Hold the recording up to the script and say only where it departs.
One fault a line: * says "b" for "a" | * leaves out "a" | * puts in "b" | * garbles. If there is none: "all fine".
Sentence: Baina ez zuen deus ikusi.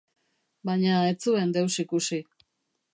all fine